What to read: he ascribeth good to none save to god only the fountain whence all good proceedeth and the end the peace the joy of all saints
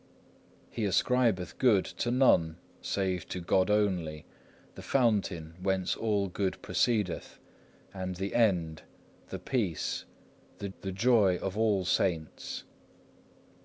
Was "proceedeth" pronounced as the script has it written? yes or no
yes